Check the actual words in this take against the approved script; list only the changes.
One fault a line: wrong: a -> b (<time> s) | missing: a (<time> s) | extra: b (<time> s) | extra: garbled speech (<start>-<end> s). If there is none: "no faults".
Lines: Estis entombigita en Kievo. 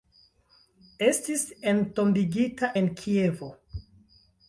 no faults